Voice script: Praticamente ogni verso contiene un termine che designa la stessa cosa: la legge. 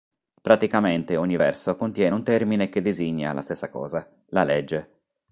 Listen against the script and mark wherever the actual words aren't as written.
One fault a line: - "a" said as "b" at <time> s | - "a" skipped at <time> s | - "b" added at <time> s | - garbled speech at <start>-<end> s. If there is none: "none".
none